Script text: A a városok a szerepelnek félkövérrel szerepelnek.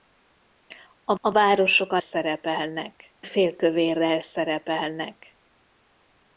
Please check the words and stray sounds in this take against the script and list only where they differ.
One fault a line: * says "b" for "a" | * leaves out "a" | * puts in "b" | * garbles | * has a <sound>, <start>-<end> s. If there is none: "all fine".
all fine